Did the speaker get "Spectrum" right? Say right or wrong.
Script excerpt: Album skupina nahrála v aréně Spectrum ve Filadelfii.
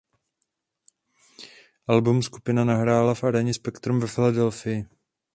right